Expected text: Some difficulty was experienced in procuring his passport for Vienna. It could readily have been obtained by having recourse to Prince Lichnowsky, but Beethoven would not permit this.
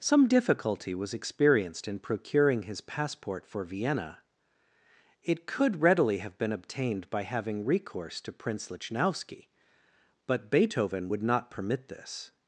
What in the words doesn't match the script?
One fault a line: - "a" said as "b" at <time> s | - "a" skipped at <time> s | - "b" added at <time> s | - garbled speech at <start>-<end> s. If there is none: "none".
none